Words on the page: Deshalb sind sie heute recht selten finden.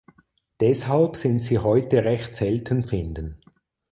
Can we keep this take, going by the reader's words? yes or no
yes